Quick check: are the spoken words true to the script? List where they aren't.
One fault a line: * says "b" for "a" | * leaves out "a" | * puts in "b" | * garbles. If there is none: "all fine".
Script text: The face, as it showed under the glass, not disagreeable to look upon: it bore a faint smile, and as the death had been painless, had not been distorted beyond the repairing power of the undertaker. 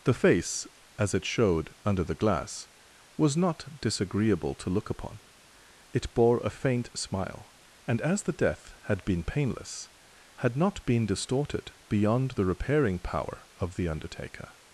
* puts in "was"